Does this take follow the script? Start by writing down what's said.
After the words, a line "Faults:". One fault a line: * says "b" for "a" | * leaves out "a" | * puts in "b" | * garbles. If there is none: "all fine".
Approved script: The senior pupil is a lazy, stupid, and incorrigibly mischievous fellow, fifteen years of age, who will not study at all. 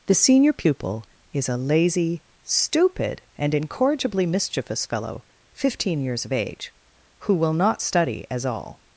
The senior pupil is a lazy, stupid, and incorrigibly mischievous fellow, fifteen years of age, who will not study as all.
Faults:
* says "as" for "at"